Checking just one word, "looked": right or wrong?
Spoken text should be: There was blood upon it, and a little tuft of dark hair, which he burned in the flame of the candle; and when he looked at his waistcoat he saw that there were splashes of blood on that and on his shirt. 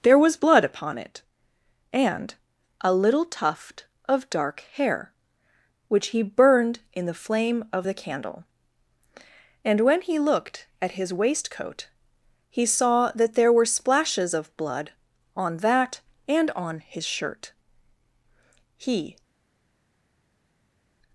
right